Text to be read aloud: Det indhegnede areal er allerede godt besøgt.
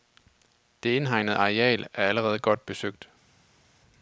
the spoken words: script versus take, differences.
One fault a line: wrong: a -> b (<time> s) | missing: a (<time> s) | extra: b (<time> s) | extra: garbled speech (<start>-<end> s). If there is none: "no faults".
no faults